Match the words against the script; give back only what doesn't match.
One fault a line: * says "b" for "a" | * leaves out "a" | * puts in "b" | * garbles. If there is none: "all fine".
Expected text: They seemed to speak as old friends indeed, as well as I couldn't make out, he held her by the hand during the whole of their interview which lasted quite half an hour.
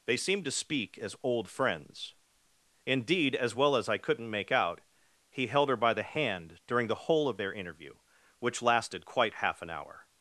all fine